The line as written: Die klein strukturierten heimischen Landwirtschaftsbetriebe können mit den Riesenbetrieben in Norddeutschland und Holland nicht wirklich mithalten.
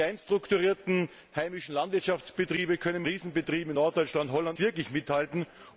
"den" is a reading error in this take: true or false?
true